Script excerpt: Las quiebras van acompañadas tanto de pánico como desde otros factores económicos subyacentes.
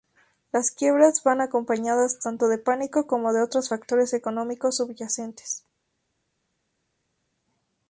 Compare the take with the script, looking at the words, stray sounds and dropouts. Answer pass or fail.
fail